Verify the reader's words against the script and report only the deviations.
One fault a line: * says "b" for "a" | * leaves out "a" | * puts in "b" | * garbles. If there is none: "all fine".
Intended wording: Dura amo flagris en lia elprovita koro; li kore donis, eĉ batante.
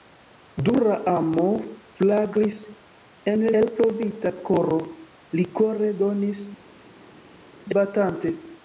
* leaves out "lia"
* leaves out "eĉ"